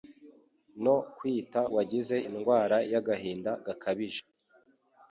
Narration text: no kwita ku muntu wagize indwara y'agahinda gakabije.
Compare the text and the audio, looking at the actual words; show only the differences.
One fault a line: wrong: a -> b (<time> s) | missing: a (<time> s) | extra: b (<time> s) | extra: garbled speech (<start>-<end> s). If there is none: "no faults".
missing: ku muntu (1.6 s)